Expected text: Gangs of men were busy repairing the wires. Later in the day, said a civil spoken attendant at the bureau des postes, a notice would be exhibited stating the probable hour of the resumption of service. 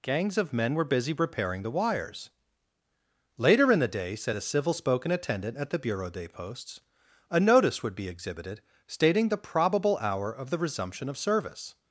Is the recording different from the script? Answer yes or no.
no